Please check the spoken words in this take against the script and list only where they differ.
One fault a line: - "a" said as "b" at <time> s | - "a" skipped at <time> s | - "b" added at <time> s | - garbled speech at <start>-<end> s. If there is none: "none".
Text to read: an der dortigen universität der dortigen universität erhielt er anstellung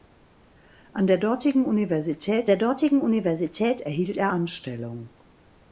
none